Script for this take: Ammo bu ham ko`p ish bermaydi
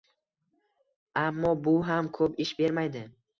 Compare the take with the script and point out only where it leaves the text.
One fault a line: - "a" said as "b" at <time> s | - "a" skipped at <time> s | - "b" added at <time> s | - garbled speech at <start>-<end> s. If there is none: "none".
none